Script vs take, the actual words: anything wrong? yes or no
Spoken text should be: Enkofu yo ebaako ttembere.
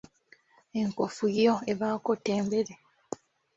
no